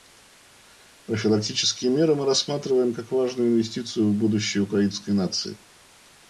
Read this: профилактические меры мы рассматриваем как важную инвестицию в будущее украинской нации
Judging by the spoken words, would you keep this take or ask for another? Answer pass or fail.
pass